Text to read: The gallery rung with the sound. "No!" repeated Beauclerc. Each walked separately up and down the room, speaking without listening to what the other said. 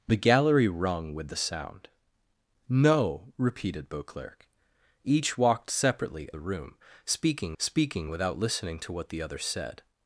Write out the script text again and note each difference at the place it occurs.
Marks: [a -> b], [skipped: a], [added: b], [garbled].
The gallery rung with the sound. "No!" repeated Beauclerc. Each walked separately [skipped: up and down] the room, speaking [added: speaking] without listening to what the other said.